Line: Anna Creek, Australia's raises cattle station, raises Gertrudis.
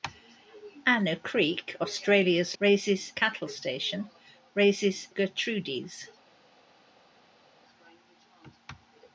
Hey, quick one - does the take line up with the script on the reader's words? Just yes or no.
yes